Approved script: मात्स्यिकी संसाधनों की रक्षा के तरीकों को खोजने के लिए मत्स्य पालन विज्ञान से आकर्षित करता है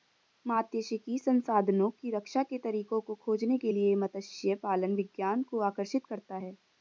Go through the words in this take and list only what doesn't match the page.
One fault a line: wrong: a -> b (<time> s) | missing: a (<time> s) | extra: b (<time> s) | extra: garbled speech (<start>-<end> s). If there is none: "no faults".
wrong: से -> को (5.4 s)